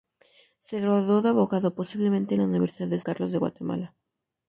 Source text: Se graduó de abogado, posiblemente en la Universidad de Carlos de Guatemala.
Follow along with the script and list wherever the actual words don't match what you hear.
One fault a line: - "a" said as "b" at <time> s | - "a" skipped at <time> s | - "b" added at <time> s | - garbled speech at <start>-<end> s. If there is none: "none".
none